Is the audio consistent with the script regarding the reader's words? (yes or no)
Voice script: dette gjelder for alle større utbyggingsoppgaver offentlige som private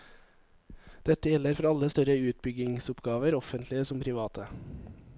yes